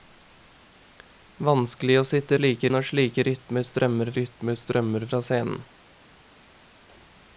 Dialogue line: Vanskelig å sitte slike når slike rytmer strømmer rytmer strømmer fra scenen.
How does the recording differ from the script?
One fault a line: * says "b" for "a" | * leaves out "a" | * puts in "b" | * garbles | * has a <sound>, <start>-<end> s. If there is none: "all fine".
all fine